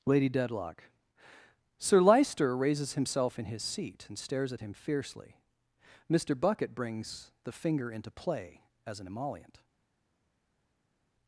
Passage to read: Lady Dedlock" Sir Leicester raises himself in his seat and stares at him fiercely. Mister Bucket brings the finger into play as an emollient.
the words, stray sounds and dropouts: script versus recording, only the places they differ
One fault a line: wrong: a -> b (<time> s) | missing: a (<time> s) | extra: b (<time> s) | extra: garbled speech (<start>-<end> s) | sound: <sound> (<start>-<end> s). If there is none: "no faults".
no faults